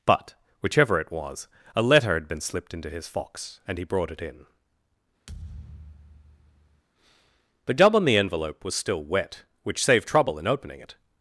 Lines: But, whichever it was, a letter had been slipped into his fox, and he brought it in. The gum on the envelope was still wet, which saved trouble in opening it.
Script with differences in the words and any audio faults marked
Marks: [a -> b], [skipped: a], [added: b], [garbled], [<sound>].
But, whichever it was, a letter had been slipped into his fox, and he brought it in. [thud] The gum on the envelope was still wet, which saved trouble in opening it.